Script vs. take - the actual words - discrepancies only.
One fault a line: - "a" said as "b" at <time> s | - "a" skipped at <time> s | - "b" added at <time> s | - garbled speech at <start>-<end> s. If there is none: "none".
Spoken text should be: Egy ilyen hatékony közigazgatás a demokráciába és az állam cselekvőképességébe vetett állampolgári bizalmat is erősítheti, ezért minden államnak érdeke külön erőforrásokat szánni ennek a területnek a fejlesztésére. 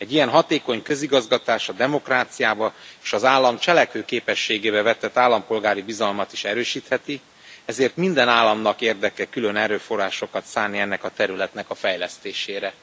none